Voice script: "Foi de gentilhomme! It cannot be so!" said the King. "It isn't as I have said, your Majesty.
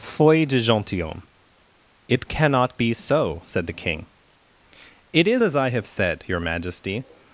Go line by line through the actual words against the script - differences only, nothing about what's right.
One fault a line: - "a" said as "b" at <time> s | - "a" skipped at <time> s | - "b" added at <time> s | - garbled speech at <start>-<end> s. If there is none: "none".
- "isn't" said as "is" at 5.3 s